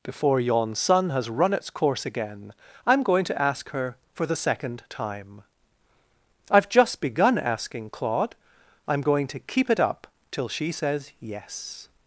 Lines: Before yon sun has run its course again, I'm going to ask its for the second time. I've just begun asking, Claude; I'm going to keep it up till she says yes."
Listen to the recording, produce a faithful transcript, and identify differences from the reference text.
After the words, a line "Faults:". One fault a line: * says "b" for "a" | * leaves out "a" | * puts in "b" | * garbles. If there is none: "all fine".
Before yon sun has run its course again, I'm going to ask her for the second time. I've just begun asking, Claude; I'm going to keep it up till she says yes."
Faults:
* says "her" for "its"